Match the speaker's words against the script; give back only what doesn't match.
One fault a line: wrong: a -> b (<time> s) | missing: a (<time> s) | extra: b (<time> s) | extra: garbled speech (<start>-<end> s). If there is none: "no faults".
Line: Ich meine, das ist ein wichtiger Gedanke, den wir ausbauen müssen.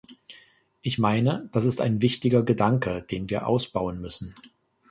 no faults